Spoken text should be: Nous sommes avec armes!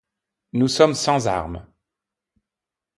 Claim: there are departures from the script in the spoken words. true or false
true